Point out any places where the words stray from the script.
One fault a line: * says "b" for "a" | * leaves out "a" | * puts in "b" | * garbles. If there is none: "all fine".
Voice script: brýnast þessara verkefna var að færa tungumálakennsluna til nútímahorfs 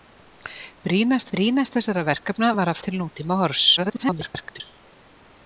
* puts in "brýnast"
* leaves out "færa tungumálakennsluna"
* garbles